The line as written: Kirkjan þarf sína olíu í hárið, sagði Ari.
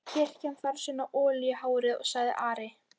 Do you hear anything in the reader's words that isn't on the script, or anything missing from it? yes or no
no